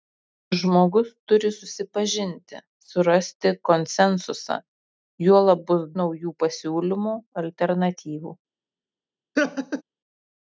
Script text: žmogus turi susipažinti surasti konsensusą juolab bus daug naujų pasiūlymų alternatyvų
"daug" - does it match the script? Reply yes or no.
no